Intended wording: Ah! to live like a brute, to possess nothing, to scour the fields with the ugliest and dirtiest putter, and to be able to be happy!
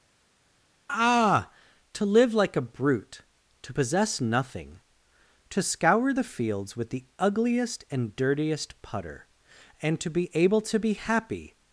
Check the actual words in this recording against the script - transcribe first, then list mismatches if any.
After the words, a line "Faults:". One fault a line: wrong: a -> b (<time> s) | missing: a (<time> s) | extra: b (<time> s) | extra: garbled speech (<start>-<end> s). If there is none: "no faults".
Ah! to live like a brute, to possess nothing, to scour the fields with the ugliest and dirtiest putter, and to be able to be happy!
Faults:
no faults